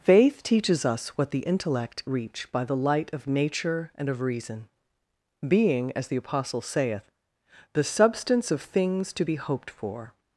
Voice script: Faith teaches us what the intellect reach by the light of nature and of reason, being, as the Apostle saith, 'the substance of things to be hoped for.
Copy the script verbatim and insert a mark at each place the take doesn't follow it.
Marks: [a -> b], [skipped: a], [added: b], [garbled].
Faith teaches us what the intellect reach by the light of nature and of reason, being, as the Apostle saith, 'the substance of things to be hoped for.